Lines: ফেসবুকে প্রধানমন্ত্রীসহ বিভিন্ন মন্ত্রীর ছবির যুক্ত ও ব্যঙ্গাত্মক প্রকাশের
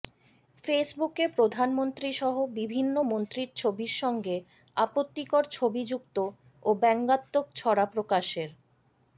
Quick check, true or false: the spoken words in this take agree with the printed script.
false